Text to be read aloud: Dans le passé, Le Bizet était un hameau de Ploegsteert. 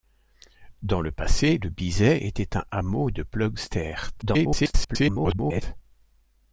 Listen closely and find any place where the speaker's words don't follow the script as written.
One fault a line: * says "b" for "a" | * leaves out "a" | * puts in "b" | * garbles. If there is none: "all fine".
* garbles